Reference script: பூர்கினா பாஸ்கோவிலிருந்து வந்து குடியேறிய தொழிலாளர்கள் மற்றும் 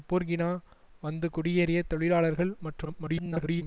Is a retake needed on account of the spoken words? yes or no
yes